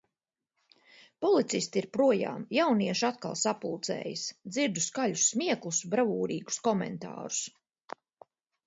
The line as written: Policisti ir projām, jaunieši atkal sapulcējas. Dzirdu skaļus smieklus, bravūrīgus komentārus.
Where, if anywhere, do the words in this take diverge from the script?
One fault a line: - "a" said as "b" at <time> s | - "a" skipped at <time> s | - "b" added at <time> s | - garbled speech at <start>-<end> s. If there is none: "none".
none